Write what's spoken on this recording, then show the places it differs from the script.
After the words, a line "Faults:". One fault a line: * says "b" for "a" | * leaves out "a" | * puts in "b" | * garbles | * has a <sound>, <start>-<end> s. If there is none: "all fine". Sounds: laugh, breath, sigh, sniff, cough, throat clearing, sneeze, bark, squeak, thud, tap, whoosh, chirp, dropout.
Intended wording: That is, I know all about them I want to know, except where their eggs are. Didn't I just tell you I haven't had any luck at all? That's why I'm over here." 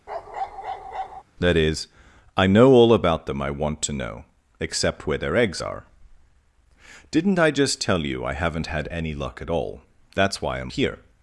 That is, I know all about them I want to know, except where their eggs are. Didn't I just tell you I haven't had any luck at all? That's why I'm here."
Faults:
* has a bark, 0.1-1.2 s
* leaves out "over"